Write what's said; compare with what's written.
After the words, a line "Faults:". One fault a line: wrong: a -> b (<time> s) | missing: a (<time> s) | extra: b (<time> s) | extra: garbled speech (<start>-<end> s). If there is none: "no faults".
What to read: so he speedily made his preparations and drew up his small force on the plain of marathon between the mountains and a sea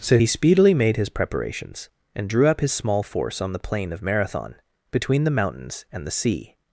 so he speedily made his preparations and drew up his small force on the plain of marathon between the mountains and the sea
Faults:
wrong: a -> the (6.1 s)